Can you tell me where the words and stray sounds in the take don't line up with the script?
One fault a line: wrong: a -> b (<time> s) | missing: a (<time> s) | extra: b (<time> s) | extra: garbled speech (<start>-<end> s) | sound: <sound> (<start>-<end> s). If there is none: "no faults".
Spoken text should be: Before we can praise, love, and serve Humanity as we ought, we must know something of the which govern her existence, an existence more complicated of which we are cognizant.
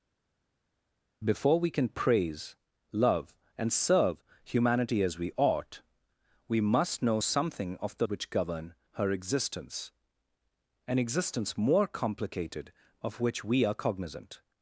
no faults